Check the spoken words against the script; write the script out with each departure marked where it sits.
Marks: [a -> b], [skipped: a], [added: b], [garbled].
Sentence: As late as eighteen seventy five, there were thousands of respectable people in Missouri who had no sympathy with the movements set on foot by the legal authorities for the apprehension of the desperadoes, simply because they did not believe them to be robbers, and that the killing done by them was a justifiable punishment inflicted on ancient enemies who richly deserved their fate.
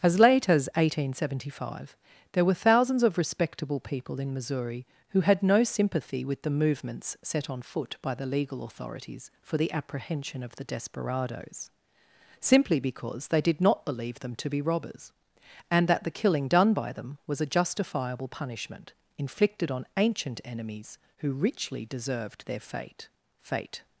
As late as eighteen seventy five, there were thousands of respectable people in Missouri who had no sympathy with the movements set on foot by the legal authorities for the apprehension of the desperadoes, simply because they did not believe them to be robbers, and that the killing done by them was a justifiable punishment inflicted on ancient enemies who richly deserved their fate. [added: fate]